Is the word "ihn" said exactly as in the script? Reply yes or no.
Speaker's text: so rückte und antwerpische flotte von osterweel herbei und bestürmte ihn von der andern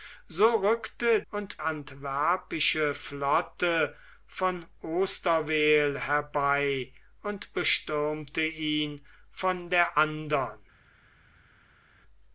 yes